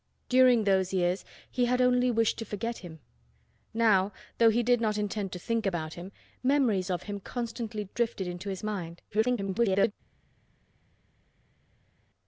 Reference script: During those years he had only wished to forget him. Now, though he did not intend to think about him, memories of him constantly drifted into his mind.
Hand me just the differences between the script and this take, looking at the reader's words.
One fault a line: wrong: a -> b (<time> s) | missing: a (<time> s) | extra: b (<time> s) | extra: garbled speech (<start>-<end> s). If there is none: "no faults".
extra: garbled speech (9.1-9.9 s)